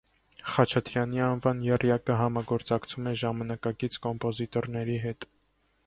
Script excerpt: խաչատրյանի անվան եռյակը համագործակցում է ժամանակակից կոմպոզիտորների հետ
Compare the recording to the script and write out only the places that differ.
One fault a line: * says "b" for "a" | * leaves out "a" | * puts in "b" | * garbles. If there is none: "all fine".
all fine